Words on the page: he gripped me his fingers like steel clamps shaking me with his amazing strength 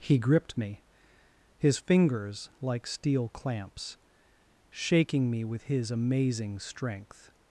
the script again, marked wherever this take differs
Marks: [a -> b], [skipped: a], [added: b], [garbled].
he gripped me his fingers like steel clamps shaking me with his amazing strength